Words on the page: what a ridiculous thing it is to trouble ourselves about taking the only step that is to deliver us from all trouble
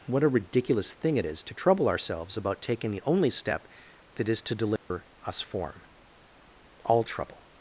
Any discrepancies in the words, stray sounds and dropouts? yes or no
yes